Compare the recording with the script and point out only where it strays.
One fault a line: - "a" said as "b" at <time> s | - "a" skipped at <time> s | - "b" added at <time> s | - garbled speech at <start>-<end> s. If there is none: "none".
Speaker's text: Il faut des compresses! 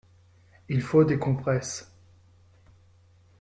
none